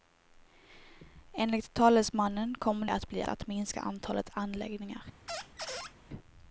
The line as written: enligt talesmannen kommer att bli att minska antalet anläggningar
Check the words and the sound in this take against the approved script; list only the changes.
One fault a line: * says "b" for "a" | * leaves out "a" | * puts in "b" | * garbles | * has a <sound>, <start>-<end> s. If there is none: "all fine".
* has a squeak, 5.3-5.9 s